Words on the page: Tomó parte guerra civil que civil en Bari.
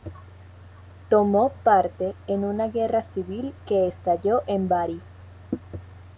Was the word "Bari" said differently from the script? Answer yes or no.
no